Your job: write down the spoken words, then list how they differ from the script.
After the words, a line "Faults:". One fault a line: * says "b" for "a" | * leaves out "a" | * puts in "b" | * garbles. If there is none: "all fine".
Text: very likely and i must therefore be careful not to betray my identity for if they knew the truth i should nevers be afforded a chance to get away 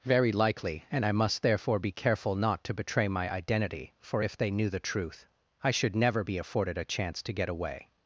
very likely and i must therefore be careful not to betray my identity for if they knew the truth i should never be afforded a chance to get away
Faults:
* says "never" for "nevers"